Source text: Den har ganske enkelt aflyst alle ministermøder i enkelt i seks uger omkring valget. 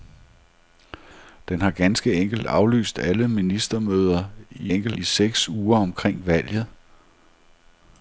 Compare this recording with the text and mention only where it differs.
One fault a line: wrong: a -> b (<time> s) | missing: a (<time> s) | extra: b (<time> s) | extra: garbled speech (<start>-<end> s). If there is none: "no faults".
no faults